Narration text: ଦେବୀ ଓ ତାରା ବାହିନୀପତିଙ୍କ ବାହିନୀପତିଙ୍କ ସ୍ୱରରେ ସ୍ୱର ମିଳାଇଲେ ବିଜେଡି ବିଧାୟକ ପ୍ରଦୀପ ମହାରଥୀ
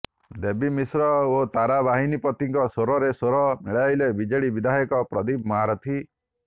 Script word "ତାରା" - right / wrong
right